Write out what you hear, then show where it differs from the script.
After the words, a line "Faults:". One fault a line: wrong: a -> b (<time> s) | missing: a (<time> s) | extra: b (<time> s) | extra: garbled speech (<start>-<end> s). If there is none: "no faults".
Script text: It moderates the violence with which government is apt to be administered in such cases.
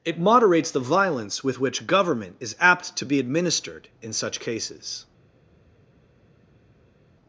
It moderates the violence with which government is apt to be administered in such cases.
Faults:
no faults